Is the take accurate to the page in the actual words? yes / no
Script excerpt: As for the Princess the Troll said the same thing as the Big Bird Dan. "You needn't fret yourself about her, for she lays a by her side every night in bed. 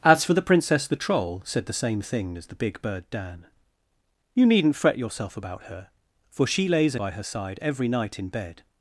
yes